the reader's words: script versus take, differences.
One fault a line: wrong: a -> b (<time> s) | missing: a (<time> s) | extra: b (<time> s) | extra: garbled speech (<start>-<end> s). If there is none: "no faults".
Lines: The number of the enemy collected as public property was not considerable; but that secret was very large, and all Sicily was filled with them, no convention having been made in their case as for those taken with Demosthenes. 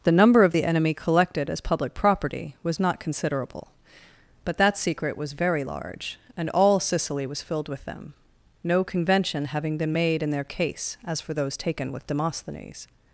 no faults